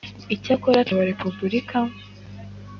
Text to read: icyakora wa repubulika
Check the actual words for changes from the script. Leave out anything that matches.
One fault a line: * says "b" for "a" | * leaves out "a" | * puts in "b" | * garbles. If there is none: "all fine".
all fine